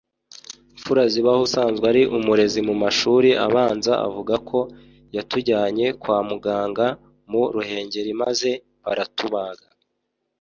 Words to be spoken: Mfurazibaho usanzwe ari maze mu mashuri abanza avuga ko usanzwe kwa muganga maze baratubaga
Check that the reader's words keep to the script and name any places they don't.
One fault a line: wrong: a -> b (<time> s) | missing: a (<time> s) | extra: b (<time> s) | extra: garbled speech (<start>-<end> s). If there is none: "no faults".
wrong: maze -> umurezi (2.2 s)
wrong: usanzwe -> yatujyanye (5.1 s)
extra: mu Ruhengeri (7.3 s)